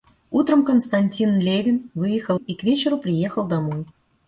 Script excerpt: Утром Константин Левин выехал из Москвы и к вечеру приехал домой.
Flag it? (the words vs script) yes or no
yes